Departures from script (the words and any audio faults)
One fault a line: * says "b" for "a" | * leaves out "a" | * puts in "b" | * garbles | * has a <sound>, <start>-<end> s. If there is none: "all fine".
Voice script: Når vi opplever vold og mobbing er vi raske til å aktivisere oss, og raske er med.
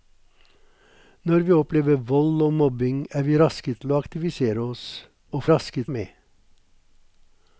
all fine